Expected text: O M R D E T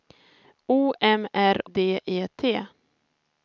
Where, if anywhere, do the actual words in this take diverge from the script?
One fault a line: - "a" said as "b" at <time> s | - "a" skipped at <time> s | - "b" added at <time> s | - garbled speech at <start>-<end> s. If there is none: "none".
none